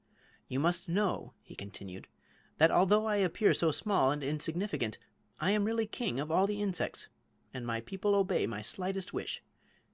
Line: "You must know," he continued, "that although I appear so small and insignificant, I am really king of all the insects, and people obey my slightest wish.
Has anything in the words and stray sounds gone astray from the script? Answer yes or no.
yes